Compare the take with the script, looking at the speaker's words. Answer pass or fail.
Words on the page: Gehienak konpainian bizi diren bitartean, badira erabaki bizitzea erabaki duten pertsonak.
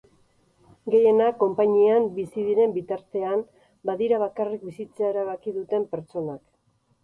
fail